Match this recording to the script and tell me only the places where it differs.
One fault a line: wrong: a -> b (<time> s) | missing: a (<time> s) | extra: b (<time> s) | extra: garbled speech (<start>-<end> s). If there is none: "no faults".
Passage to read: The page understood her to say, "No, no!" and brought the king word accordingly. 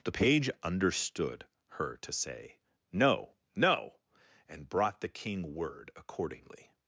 no faults